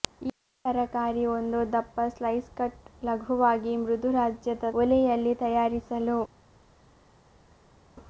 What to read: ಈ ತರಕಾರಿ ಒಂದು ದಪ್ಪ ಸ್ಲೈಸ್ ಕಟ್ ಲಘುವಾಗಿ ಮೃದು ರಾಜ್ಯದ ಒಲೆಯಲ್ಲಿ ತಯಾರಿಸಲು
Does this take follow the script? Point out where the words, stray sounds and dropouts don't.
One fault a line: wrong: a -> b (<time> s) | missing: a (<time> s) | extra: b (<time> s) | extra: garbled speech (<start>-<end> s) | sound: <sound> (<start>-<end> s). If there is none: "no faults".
no faults